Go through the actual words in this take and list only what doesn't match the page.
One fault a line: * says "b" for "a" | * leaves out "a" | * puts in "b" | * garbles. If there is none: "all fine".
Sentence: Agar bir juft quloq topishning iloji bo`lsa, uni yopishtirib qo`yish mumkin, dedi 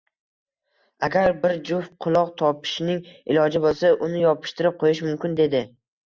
all fine